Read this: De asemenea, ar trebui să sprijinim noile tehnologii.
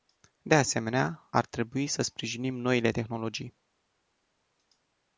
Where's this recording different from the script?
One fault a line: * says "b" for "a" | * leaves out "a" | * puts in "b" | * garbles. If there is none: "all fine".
all fine